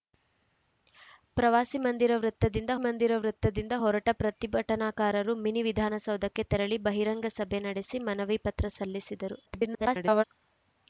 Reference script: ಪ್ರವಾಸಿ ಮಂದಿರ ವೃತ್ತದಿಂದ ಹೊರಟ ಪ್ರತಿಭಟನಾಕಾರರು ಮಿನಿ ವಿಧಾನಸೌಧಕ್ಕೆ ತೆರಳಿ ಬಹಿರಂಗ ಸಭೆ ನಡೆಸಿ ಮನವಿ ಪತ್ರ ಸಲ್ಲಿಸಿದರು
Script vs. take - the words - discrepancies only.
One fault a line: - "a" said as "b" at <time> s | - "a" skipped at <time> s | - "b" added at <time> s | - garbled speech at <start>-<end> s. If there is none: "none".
- "ಮಂದಿರ ವೃತ್ತದಿಂದ" added at 2.8 s
- garbled speech at 9.5-10.2 s